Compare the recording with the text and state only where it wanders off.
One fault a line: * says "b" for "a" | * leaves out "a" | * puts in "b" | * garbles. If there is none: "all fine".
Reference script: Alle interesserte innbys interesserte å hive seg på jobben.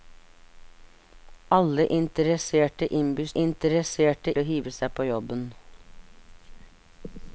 all fine